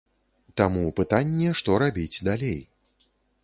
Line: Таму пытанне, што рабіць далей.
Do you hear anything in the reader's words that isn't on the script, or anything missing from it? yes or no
no